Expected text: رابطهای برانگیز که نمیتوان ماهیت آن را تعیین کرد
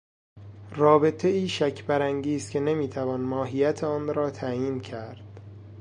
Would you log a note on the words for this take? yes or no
yes